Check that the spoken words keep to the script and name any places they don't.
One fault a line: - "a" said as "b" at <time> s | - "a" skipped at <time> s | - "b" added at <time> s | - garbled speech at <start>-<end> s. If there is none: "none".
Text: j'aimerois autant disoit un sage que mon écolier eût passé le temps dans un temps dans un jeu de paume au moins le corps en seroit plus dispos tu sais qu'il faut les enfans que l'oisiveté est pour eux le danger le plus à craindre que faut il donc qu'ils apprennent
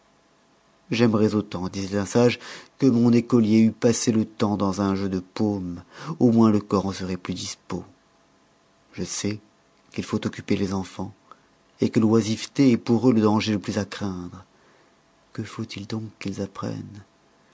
- "temps dans un" skipped at 4.9 s
- "tu" said as "je" at 8.9 s
- "occuper" added at 10.3 s